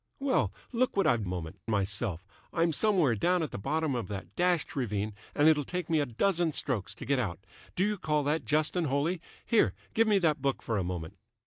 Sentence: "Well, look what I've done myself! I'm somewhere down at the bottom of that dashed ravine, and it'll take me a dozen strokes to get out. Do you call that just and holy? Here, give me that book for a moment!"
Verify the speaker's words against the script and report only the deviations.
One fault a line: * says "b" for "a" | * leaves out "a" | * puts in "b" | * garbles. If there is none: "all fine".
* says "moment" for "done"